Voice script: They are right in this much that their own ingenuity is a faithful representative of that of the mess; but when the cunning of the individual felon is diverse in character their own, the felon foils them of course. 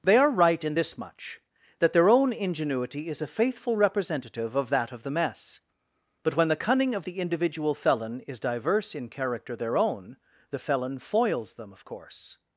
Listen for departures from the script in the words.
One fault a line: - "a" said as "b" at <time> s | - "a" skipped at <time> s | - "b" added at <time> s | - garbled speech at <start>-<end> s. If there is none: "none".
none